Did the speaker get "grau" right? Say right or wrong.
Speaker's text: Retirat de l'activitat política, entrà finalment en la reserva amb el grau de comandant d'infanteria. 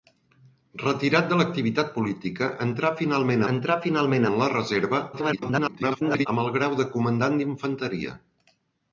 right